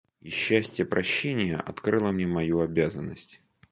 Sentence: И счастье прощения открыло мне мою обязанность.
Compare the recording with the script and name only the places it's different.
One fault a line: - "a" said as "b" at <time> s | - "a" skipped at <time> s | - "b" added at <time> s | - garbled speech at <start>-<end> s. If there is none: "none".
none